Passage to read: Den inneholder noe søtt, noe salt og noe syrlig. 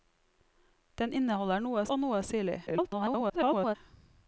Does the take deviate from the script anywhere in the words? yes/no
yes